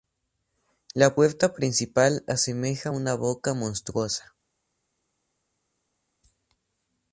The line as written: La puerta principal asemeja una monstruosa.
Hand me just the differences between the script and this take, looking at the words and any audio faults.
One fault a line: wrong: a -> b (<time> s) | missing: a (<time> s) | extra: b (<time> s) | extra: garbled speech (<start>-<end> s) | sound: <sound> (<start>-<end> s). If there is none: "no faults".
extra: boca (3.1 s)